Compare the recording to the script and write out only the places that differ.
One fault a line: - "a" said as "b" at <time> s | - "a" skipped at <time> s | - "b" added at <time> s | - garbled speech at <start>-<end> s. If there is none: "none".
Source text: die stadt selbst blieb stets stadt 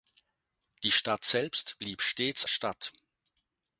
none